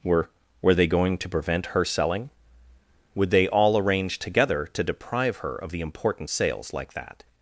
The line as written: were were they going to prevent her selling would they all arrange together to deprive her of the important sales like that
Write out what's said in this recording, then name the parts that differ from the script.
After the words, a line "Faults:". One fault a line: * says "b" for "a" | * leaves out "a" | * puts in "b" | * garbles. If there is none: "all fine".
were were they going to prevent her selling would they all arrange together to deprive her of the important sales like that
Faults:
all fine